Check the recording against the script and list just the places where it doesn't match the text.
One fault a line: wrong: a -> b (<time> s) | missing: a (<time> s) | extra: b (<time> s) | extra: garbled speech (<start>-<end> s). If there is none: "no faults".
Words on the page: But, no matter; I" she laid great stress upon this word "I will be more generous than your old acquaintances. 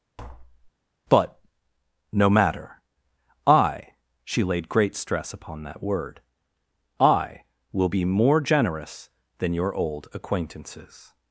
wrong: this -> that (5.6 s)